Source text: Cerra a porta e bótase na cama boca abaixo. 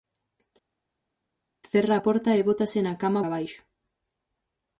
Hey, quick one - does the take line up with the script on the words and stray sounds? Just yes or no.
no